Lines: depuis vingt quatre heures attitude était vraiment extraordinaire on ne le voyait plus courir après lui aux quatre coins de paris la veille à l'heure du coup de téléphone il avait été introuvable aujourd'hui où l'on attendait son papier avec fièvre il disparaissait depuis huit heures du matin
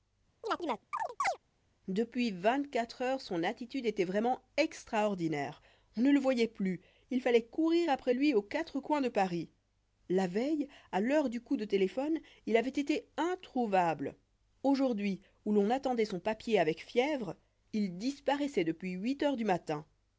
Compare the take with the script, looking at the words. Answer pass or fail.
fail